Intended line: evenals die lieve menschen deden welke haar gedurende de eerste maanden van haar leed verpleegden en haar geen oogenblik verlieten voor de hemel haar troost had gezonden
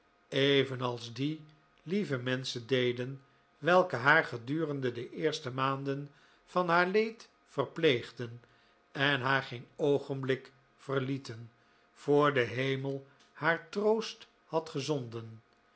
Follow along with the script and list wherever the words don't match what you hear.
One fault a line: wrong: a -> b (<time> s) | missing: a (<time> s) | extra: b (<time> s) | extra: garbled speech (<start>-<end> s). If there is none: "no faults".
no faults